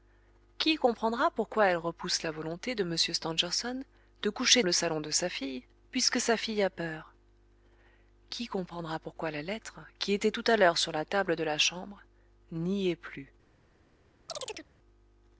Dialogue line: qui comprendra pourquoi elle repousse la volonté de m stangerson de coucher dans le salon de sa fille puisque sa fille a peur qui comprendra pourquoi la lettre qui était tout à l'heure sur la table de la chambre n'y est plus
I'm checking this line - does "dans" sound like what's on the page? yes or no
no